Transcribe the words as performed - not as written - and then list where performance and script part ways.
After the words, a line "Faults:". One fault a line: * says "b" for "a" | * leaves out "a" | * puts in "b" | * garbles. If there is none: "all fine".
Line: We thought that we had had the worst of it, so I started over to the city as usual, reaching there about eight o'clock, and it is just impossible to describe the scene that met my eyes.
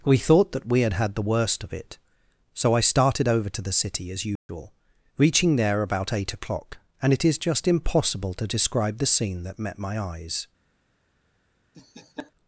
We thought that we had had the worst of it, so I started over to the city as usual, reaching there about eight o'clock, and it is just impossible to describe the scene that met my eyes.
Faults:
all fine